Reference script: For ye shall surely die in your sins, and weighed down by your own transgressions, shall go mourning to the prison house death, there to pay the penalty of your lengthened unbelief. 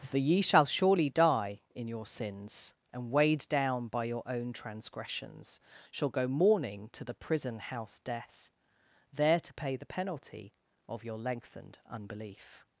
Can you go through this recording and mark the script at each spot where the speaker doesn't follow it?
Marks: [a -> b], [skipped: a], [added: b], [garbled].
For ye shall surely die in your sins, and weighed down by your own transgressions, shall go mourning to the prison house death, there to pay the penalty of your lengthened unbelief.